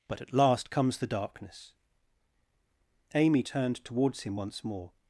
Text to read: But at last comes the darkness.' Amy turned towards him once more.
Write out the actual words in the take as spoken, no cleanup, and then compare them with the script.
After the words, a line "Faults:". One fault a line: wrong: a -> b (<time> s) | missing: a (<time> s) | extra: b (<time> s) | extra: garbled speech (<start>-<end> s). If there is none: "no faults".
But at last comes the darkness.' Amy turned towards him once more.
Faults:
no faults